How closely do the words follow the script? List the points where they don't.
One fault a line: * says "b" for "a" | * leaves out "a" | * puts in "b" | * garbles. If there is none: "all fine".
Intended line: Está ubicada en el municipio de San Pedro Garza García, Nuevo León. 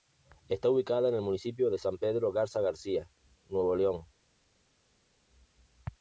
all fine